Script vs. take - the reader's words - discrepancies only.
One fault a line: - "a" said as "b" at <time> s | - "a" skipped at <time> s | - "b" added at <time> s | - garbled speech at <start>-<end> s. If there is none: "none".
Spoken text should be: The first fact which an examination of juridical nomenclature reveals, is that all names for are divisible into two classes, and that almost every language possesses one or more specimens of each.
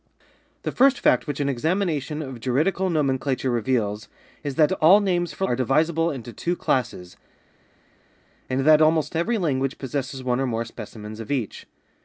none